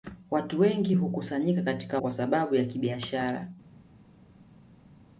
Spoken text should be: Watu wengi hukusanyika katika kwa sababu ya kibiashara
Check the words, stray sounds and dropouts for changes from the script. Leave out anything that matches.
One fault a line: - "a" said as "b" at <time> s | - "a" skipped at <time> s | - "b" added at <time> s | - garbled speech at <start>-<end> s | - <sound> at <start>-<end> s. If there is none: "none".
none